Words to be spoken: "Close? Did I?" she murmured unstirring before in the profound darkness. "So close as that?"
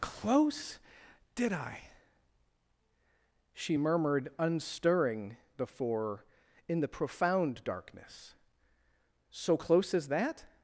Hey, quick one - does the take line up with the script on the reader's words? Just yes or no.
yes